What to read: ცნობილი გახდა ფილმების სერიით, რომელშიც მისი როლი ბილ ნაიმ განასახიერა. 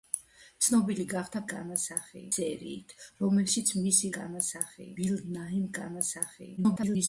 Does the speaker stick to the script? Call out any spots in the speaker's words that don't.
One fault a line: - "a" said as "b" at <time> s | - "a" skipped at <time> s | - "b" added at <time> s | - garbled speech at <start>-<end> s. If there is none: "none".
- "ფილმების" said as "განასახიერა" at 1.5 s
- "როლი" said as "განასახიერა" at 4.2 s
- garbled speech at 6.6-7.1 s